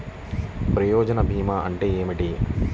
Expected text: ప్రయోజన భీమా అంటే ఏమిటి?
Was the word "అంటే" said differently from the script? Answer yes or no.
no